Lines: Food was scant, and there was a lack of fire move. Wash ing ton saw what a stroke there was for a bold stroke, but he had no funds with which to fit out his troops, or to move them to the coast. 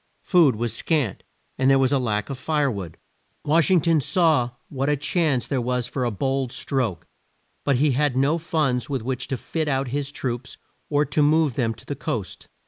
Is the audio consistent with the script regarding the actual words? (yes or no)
no